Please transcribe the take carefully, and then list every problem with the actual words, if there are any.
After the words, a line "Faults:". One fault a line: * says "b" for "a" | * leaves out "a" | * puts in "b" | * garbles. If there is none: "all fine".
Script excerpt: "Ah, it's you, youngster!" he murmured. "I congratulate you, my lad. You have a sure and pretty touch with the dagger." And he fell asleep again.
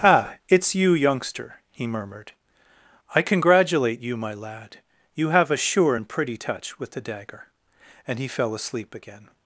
"Ah, it's you, youngster!" he murmured. "I congratulate you, my lad. You have a sure and pretty touch with the dagger." And he fell asleep again.
Faults:
all fine